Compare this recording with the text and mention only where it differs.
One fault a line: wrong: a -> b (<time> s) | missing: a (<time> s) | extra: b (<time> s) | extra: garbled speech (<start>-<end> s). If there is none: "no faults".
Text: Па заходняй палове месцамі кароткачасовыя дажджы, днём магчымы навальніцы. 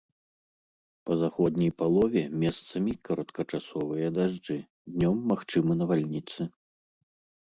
no faults